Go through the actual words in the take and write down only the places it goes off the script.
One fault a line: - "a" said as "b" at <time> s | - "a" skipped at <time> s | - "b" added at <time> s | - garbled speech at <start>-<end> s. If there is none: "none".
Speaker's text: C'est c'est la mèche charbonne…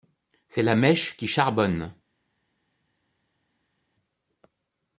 - "c'est" skipped at 0.6 s
- "qui" added at 1.1 s